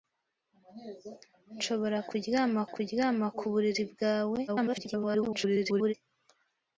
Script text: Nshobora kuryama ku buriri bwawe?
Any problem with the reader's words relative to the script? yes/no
yes